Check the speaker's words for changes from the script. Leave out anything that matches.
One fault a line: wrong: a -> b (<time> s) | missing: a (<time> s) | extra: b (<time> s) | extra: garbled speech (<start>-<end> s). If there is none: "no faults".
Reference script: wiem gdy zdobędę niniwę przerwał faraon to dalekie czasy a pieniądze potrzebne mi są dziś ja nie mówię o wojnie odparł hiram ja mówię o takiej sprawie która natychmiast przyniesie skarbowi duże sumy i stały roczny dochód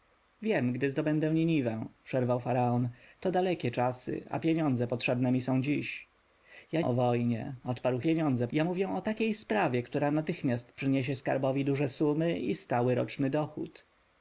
missing: nie mówię (6.8 s)
wrong: hiram -> pieniądze (8.0 s)